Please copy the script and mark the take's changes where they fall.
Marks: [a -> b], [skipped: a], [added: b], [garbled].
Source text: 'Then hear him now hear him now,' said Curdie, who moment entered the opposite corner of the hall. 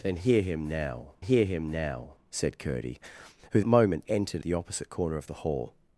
'Then hear him now hear him now,' said Curdie, who moment entered the opposite corner of the hall.